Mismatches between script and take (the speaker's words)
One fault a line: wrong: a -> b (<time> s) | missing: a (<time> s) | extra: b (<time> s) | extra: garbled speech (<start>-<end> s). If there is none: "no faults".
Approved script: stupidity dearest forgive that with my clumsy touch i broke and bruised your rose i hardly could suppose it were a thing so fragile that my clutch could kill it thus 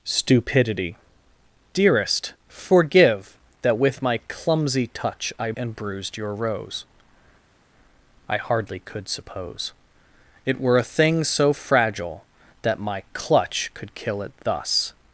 missing: broke (5.5 s)